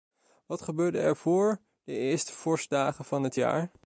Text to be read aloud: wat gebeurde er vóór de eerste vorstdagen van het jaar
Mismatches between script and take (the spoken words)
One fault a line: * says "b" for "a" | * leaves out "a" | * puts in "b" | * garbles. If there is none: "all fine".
all fine